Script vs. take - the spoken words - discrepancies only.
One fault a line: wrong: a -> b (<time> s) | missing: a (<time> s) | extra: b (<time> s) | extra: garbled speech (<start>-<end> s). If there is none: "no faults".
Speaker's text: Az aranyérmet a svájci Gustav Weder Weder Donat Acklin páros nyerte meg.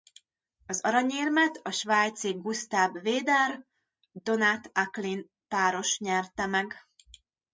missing: Weder (3.6 s)